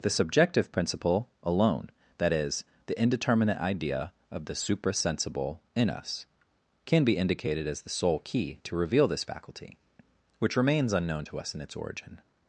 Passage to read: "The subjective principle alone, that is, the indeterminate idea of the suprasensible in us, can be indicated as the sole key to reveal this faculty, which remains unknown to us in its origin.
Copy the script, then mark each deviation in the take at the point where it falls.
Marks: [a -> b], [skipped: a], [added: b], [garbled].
"The subjective principle alone, that is, the indeterminate idea of the suprasensible in us, can be indicated as the sole key to reveal this faculty, which remains unknown to us in its origin.